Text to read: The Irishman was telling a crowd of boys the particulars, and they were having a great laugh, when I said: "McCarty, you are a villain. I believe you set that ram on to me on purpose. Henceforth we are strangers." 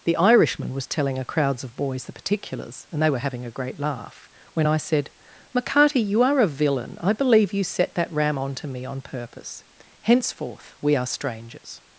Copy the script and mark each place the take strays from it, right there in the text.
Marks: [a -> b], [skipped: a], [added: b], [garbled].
The Irishman was telling a [crowd -> crowds] of boys the particulars, and they were having a great laugh, when I said: "McCarty, you are a villain. I believe you set that ram on to me on purpose. Henceforth we are strangers."